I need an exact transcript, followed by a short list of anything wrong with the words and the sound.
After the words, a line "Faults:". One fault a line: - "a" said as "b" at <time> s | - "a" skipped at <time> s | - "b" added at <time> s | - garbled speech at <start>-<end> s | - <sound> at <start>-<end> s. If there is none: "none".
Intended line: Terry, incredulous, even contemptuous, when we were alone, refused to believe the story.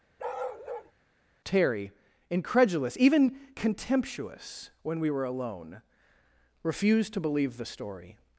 Terry, incredulous, even contemptuous, when we were alone, refused to believe the story.
Faults:
- bark at 0.2-0.9 s